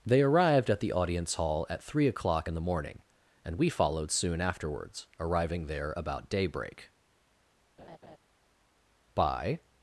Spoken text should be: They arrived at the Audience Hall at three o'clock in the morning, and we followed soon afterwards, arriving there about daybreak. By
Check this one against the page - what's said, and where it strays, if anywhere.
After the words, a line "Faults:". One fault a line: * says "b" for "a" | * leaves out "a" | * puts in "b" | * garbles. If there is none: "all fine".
They arrived at the Audience Hall at three o'clock in the morning, and we followed soon afterwards, arriving there about daybreak. By
Faults:
all fine